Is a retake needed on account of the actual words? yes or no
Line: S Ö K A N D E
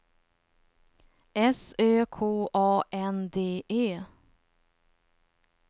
no